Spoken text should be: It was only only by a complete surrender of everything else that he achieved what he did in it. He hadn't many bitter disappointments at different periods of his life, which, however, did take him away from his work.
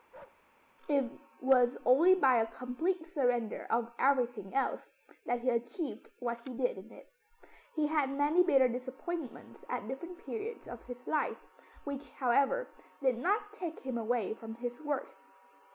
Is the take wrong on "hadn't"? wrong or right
wrong